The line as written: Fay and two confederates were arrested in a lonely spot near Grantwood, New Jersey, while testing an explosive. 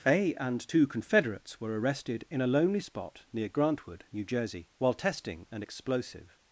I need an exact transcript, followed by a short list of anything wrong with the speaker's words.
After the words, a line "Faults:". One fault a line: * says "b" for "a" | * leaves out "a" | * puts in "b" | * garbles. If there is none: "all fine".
Fay and two confederates were arrested in a lonely spot near Grantwood, New Jersey, while testing an explosive.
Faults:
all fine